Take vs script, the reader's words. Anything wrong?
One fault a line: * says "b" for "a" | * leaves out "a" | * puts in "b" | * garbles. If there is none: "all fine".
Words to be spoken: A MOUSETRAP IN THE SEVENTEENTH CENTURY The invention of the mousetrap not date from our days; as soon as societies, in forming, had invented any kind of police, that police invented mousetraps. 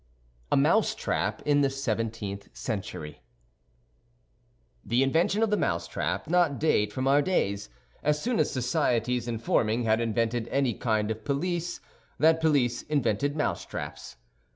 all fine